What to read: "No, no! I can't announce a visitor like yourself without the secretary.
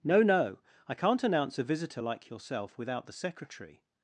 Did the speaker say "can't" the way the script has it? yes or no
yes